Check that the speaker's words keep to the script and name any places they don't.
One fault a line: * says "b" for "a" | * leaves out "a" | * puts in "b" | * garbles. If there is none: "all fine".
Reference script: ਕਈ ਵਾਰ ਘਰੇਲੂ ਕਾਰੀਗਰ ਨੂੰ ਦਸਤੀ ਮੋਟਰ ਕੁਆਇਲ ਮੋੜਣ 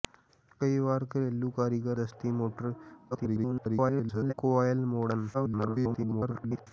* leaves out "ਨੂੰ"
* garbles
* garbles